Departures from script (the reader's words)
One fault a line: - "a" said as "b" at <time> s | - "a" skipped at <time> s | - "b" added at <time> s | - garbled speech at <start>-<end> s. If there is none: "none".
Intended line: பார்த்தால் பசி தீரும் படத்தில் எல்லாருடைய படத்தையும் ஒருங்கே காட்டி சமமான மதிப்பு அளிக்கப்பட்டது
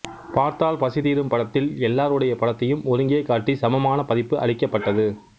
none